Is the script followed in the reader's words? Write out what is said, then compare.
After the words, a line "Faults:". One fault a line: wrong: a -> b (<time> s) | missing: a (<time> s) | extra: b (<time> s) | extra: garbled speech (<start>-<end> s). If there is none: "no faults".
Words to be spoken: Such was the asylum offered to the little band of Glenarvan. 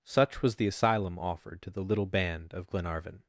Such was the asylum offered to the little band of Glenarvan.
Faults:
no faults